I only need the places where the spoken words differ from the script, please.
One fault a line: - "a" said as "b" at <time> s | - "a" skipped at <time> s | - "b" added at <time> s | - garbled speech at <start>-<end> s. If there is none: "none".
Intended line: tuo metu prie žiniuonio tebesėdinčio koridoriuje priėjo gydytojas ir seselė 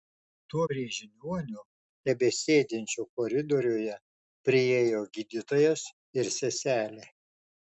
- "metu" skipped at 0.6 s